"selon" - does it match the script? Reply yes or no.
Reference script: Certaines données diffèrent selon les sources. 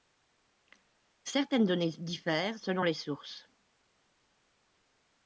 yes